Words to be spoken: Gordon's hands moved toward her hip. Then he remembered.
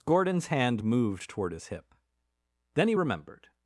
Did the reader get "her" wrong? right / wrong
wrong